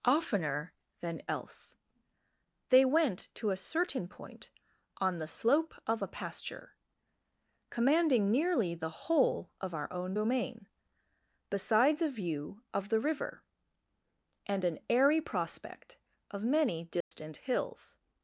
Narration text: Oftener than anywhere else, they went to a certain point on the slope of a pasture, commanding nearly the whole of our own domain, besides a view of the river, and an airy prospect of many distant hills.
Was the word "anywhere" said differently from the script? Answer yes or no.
yes